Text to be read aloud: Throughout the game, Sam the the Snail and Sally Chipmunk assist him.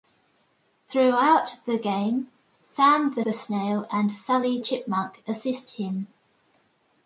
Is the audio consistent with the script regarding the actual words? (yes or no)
yes